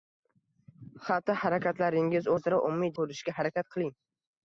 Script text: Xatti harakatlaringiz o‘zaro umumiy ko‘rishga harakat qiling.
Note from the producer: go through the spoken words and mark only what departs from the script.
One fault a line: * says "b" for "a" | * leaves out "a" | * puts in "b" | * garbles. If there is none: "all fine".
all fine